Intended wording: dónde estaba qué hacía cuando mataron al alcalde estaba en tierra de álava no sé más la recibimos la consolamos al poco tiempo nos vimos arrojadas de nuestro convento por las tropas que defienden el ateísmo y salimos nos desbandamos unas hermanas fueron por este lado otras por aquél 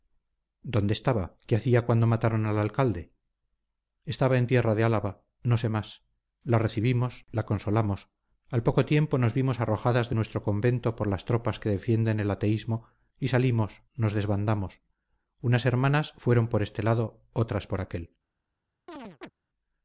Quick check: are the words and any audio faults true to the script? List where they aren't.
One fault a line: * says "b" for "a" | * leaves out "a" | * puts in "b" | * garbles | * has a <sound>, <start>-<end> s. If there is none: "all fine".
* has a chirp, 18.9-19.3 s